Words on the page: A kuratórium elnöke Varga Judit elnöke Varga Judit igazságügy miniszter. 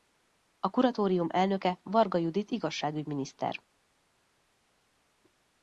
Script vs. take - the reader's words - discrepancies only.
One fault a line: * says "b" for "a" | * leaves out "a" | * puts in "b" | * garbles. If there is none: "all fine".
* leaves out "elnöke Varga Judit"